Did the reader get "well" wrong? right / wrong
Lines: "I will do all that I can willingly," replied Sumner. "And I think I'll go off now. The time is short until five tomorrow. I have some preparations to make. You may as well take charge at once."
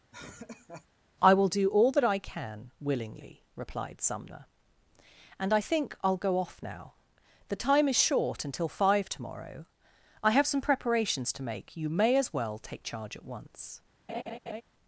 right